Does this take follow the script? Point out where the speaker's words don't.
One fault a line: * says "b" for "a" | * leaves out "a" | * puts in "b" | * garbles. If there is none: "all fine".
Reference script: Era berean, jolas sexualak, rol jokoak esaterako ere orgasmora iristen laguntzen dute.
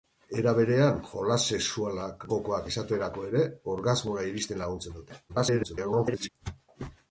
* leaves out "rol"
* garbles